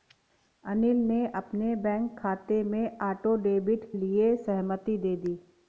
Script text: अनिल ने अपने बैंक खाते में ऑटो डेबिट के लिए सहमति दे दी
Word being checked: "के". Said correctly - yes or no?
no